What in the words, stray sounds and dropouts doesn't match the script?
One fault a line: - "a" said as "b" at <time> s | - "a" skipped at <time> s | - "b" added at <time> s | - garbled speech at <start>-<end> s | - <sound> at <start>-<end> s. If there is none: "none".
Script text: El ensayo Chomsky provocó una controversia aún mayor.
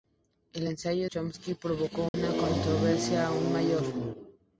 - dropout at 2.1-2.1 s